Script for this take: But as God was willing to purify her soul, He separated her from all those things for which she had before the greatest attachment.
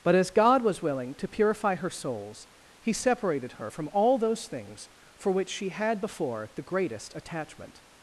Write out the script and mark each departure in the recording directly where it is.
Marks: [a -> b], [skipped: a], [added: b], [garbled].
But as God was willing to purify her [soul, -> souls] He separated her from all those things for which she had before the greatest attachment.